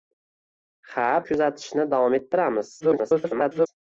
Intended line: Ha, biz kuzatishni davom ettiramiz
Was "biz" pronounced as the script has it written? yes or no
no